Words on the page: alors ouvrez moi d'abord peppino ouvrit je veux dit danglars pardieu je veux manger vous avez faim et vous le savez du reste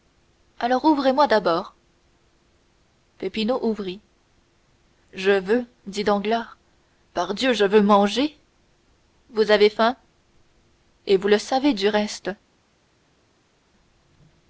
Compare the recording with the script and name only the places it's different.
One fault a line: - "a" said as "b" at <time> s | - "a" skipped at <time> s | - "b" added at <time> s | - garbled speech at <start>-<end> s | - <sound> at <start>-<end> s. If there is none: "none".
none